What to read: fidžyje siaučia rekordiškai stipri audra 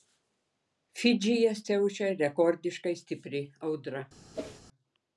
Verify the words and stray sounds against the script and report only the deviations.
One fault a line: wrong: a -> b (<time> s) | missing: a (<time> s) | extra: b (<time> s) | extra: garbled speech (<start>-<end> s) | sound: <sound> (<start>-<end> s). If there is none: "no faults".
sound: whoosh (4.3-4.6 s)